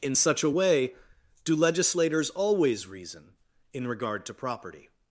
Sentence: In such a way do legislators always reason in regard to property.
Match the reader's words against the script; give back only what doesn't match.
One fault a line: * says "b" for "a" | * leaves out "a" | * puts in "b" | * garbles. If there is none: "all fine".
all fine